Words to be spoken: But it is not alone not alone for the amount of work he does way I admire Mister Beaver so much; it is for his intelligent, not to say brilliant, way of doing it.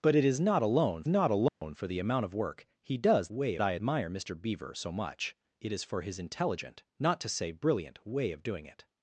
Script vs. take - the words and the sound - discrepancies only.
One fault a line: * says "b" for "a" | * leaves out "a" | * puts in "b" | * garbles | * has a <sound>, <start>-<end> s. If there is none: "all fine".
* has a dropout, 1.5-1.6 s